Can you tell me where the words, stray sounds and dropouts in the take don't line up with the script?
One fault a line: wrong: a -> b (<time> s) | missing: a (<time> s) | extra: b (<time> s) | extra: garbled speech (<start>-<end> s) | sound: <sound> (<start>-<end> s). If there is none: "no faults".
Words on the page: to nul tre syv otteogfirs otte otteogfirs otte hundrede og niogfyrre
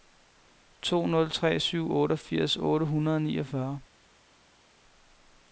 missing: otteogfirs otte (2.8 s)